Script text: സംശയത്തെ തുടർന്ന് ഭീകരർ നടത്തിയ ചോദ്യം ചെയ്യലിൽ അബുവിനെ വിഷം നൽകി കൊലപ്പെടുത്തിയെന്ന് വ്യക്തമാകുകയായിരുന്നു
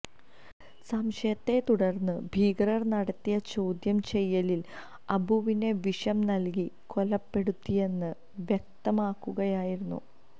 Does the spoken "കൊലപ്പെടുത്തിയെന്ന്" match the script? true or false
true